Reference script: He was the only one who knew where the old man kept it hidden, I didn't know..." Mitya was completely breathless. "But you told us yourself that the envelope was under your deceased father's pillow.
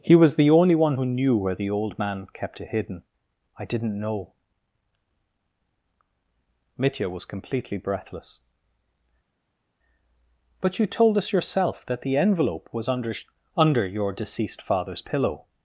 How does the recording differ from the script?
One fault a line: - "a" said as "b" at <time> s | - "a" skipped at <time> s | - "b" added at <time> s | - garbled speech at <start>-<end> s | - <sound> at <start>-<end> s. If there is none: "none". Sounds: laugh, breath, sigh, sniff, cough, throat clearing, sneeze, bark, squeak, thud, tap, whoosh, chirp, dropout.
- "under" added at 13.6 s